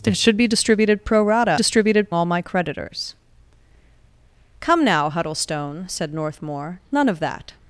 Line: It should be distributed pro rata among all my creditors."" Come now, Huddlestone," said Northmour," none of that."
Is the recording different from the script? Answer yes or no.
yes